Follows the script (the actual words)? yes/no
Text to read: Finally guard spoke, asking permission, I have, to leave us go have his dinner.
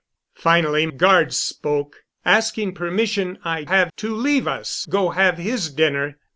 yes